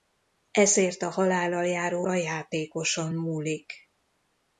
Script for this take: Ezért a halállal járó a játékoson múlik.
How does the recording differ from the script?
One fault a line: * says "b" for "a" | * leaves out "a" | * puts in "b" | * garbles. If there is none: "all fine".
all fine